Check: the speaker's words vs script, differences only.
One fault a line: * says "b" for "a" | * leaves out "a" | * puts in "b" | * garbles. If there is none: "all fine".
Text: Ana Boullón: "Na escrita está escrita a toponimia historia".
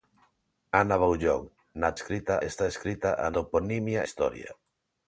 all fine